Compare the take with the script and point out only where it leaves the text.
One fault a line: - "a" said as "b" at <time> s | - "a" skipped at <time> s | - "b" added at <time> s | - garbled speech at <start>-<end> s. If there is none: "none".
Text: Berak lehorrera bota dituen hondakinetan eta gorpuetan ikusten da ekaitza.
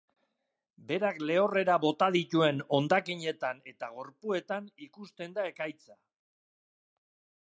none